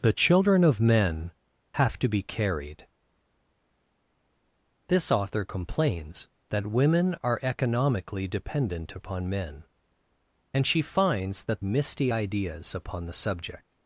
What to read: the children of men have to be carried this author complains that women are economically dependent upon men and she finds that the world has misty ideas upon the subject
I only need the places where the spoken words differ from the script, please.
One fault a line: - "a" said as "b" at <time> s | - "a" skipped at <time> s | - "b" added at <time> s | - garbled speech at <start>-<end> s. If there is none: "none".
- "the world has" skipped at 11.6 s